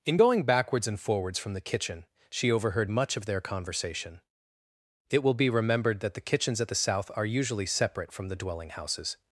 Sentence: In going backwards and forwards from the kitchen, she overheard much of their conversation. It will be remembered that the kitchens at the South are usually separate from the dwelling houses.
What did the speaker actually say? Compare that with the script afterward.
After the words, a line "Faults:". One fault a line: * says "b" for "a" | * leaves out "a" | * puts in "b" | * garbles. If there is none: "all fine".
In going backwards and forwards from the kitchen, she overheard much of their conversation. It will be remembered that the kitchens at the South are usually separate from the dwelling houses.
Faults:
all fine